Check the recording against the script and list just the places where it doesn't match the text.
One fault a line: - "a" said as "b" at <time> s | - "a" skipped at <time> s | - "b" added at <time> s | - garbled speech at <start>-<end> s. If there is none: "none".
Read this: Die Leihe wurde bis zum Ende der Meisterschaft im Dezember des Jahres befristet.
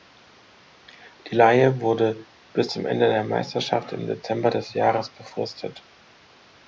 none